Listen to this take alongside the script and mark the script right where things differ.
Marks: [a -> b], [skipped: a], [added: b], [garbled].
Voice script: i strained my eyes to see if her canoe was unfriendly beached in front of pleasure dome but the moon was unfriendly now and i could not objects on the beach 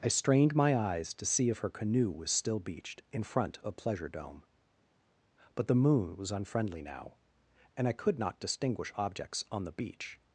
i strained my eyes to see if her canoe was [unfriendly -> still] beached in front of pleasure dome but the moon was unfriendly now and i could not [added: distinguish] objects on the beach